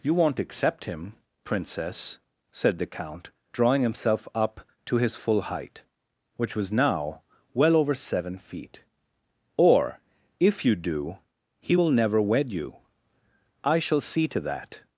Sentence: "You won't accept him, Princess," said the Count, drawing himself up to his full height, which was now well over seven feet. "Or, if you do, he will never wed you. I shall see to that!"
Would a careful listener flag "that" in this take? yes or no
no